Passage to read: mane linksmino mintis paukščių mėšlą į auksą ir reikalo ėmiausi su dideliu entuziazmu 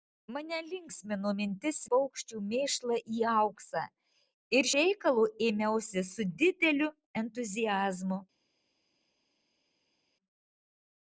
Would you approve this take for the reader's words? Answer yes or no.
yes